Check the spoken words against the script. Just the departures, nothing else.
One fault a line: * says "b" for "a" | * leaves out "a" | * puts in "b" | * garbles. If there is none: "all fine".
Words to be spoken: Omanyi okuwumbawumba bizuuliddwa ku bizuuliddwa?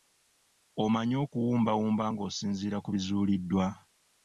* says "ng'osinziira" for "bizuuliddwa"